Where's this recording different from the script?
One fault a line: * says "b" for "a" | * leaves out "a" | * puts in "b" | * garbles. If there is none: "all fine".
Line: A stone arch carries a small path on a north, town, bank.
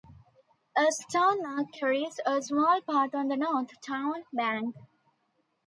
* says "the" for "a"